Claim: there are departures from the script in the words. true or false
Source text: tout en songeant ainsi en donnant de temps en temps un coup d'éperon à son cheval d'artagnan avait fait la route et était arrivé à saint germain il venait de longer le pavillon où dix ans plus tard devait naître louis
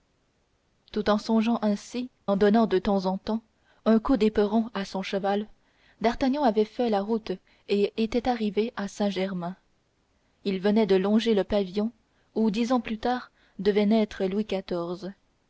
false